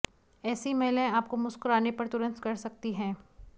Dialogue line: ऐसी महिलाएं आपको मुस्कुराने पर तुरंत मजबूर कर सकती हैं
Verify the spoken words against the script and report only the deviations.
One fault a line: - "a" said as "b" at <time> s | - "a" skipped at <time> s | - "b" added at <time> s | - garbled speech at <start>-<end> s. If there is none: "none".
- "मजबूर" skipped at 2.4 s